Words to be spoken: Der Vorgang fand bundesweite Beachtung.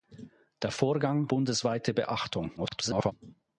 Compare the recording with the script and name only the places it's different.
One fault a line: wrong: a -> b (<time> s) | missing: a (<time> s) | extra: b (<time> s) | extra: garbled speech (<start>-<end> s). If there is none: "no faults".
missing: fand (1.3 s)
extra: garbled speech (2.6-3.1 s)